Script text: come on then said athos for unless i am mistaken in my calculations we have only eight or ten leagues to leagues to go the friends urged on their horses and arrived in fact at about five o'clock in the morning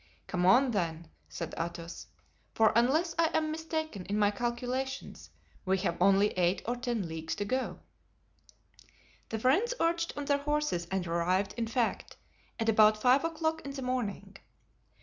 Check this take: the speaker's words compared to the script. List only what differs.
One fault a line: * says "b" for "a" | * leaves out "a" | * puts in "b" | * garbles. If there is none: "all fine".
* leaves out "leagues to"